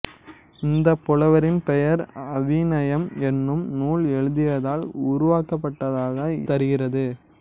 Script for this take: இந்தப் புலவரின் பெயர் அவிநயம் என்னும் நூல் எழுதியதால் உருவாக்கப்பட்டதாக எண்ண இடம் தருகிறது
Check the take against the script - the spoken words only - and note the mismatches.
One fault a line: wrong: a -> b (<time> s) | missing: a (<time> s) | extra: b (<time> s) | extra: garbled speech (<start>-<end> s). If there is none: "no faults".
missing: எண்ண இடம் (6.2 s)